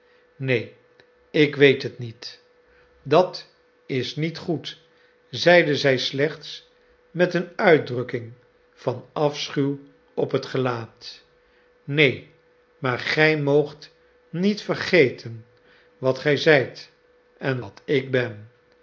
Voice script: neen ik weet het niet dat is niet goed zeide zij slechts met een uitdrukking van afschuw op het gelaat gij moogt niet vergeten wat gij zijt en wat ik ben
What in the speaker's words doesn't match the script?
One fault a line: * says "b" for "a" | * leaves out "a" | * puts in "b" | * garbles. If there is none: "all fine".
* puts in "neen maar"